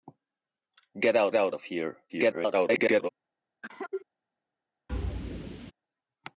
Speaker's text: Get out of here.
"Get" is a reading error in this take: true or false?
false